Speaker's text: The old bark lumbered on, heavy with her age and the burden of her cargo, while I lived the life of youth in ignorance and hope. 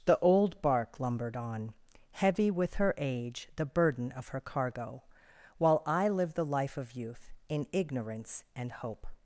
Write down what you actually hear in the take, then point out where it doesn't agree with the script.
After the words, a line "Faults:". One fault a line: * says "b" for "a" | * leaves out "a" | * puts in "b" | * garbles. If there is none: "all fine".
The old bark lumbered on, heavy with her age the burden of her cargo, while I lived the life of youth in ignorance and hope.
Faults:
* leaves out "and"